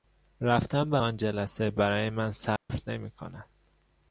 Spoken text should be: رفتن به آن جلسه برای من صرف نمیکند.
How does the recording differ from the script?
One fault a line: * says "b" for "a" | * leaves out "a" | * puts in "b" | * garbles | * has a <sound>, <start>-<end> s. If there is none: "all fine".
* has a dropout, 2.6-2.7 s